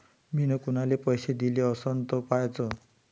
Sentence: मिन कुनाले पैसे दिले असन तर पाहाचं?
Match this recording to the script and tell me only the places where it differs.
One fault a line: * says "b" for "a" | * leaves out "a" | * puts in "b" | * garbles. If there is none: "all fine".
all fine